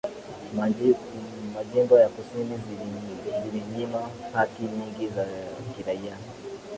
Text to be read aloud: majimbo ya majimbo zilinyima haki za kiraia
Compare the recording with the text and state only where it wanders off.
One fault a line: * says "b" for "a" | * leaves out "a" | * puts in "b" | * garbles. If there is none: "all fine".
* says "kusini" for "majimbo"
* puts in "nyingi"